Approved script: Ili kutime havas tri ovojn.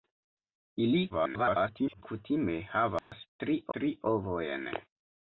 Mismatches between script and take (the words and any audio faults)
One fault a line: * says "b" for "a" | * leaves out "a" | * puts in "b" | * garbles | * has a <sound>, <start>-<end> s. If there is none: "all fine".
* garbles
* has a dropout, 3.0-3.1 s
* puts in "tri"